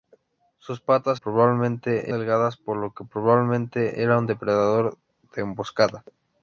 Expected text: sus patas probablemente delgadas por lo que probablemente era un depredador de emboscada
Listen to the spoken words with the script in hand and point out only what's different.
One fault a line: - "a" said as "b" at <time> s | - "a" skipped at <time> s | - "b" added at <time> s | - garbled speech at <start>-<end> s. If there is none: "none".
none